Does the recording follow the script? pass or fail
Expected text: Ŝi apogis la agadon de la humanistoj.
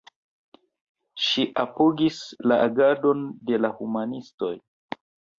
pass